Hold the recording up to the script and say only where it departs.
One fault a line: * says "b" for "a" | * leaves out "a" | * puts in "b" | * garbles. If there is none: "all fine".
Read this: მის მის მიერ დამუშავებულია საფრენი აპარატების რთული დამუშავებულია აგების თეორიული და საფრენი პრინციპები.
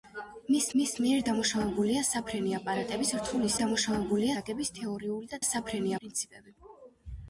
all fine